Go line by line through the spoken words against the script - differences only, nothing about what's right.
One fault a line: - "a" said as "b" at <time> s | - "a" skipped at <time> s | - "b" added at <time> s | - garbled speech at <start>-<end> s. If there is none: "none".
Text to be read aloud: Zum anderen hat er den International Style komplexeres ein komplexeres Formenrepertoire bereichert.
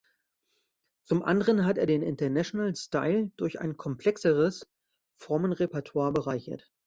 - "komplexeres" said as "durch" at 3.4 s